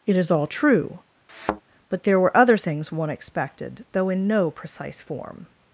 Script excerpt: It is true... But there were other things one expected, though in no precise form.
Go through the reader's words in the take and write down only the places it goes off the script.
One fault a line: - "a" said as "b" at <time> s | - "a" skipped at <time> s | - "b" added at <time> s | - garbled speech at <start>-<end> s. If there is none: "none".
- "all" added at 0.3 s